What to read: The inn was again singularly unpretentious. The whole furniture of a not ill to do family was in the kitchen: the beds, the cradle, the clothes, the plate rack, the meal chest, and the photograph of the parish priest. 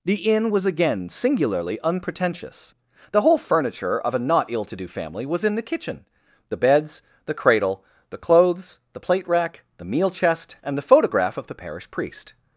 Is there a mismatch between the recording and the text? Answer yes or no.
no